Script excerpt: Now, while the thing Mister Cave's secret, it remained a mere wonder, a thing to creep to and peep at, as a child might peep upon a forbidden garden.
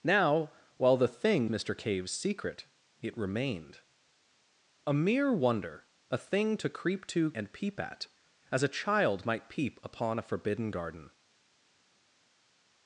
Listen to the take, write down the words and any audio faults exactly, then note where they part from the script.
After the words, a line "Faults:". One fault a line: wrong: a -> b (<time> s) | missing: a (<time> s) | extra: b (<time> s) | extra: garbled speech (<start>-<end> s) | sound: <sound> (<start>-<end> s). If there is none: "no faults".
Now, while the thing Mister Cave's secret, it remained a mere wonder, a thing to creep to and peep at, as a child might peep upon a forbidden garden.
Faults:
no faults